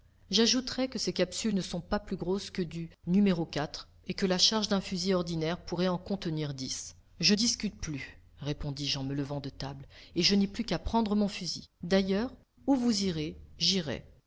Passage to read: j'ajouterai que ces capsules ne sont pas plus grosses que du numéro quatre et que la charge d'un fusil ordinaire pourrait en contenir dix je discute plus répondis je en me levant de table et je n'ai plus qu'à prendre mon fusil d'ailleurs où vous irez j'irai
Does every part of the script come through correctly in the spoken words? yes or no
yes